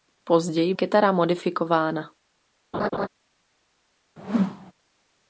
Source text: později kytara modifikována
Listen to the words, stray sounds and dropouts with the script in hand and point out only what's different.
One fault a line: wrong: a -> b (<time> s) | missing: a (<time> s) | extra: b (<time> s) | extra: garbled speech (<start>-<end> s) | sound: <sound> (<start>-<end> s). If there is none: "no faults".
sound: laugh (2.7-3.1 s)
sound: whoosh (4.2-4.7 s)